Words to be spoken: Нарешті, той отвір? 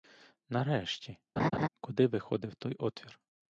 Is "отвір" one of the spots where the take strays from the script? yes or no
no